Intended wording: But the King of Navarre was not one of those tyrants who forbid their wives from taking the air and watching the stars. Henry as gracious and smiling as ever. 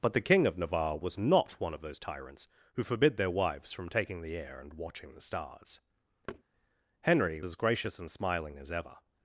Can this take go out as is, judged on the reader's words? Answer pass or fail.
pass